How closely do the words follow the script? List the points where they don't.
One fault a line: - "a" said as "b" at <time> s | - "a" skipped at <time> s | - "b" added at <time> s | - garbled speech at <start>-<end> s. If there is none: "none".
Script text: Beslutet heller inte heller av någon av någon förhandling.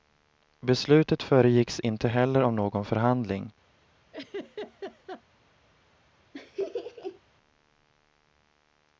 - "heller" said as "föregicks" at 1.2 s
- "av någon" skipped at 2.8 s